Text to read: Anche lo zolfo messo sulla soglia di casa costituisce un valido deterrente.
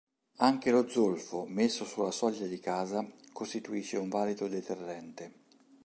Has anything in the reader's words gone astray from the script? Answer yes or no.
no